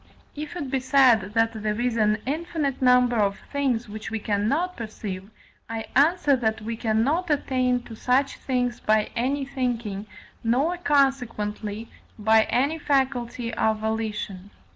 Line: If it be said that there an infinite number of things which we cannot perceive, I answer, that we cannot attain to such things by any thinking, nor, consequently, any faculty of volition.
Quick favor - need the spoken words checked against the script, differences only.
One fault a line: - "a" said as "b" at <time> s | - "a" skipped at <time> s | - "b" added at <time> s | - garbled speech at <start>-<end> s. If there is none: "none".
- "is" added at 1.8 s
- "by" added at 12.2 s